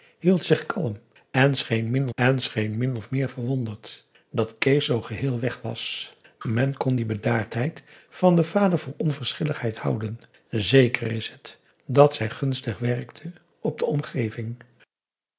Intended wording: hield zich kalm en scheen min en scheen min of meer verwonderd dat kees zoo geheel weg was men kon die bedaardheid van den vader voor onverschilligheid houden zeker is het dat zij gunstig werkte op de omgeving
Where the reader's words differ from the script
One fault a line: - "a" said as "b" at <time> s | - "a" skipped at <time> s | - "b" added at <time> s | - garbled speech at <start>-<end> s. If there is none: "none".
none